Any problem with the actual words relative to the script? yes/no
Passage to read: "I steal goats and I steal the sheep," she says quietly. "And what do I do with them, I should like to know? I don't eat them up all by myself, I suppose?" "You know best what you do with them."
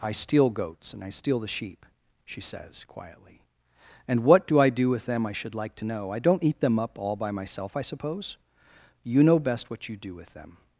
no